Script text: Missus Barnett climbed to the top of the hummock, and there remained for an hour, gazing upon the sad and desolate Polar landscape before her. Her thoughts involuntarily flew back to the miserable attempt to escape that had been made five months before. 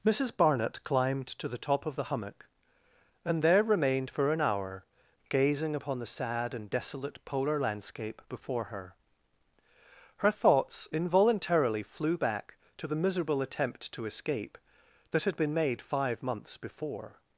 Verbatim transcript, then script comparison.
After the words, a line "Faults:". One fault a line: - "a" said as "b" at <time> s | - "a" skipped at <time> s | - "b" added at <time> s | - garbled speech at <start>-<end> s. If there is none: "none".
Missus Barnett climbed to the top of the hummock, and there remained for an hour, gazing upon the sad and desolate Polar landscape before her. Her thoughts involuntarily flew back to the miserable attempt to escape that had been made five months before.
Faults:
none